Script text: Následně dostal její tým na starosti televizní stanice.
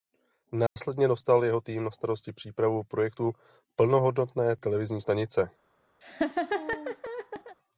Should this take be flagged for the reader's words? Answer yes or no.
yes